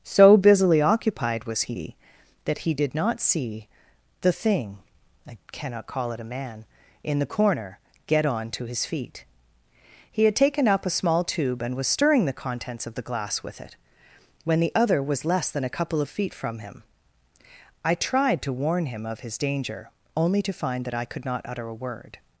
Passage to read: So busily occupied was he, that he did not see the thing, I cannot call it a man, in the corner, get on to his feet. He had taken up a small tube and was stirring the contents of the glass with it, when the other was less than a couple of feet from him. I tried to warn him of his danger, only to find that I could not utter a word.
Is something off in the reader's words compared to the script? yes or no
no